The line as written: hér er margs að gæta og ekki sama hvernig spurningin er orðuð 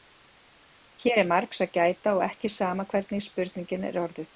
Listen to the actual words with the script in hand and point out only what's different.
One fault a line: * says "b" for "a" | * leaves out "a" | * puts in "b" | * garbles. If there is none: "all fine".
all fine